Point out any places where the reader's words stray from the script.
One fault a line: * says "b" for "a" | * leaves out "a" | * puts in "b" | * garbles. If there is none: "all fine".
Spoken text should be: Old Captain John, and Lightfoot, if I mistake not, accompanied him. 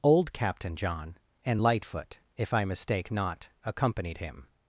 all fine